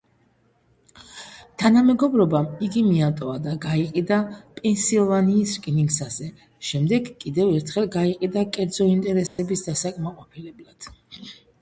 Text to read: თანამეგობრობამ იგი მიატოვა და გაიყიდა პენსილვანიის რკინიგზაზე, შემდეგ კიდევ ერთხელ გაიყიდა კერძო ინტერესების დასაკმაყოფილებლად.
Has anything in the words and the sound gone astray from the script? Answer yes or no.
yes